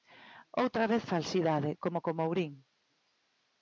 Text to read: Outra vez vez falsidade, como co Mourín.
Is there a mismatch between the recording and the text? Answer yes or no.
yes